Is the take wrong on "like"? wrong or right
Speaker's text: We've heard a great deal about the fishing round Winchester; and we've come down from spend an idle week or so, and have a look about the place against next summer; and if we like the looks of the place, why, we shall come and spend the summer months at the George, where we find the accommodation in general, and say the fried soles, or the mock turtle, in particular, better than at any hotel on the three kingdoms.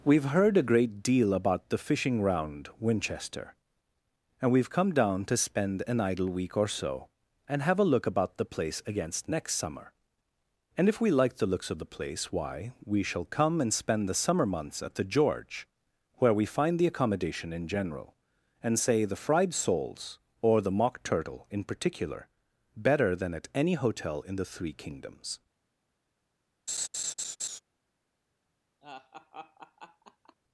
right